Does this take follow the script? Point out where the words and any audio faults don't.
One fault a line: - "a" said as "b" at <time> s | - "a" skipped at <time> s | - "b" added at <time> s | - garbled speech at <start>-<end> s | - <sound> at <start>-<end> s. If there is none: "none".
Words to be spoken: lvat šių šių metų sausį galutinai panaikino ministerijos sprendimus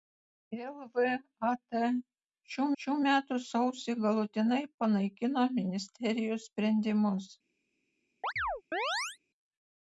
- chirp at 8.2-9.2 s